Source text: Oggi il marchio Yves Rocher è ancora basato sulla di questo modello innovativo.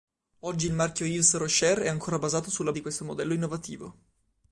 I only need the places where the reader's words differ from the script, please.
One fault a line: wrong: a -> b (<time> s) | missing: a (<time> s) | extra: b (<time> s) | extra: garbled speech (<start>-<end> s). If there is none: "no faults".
no faults